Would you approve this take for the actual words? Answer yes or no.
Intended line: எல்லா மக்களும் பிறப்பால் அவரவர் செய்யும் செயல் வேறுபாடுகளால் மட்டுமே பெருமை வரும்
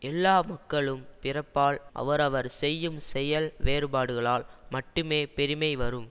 yes